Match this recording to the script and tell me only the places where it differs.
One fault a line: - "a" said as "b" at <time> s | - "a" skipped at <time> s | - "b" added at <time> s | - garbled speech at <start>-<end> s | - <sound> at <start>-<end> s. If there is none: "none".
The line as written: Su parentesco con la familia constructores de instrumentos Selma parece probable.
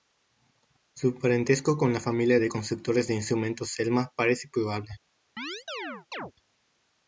- "de" added at 2.4 s
- chirp at 5.4-6.3 s